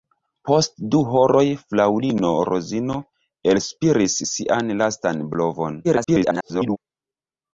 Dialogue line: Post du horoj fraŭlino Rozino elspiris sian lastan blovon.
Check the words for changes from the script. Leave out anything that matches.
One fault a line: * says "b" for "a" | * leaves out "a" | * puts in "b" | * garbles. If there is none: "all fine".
* garbles